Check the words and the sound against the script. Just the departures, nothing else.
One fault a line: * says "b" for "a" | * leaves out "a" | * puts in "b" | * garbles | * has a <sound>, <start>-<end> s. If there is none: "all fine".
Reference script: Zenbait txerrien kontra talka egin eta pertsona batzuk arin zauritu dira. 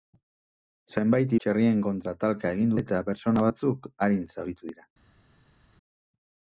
all fine